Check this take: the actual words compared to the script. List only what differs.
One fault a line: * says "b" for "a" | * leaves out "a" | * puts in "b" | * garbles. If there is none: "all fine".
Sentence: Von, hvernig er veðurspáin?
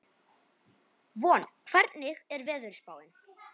all fine